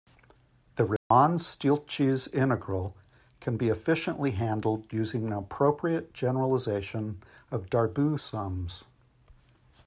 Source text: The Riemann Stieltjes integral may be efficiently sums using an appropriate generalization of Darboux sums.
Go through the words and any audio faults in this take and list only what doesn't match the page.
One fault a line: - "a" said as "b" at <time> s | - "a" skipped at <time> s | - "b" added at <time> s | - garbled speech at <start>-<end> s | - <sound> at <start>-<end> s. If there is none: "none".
- dropout at 1.0-1.1 s
- "may" said as "can" at 3.4 s
- "sums" said as "handled" at 4.3 s